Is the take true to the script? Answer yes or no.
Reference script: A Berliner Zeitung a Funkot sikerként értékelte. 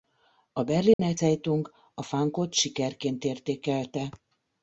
yes